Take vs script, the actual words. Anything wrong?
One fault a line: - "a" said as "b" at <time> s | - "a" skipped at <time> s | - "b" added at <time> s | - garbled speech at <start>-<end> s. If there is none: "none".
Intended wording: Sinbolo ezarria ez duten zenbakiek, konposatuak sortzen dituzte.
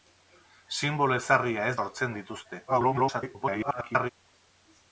- "duten zenbakiek konposatuak" skipped at 1.8 s
- garbled speech at 2.7-4.1 s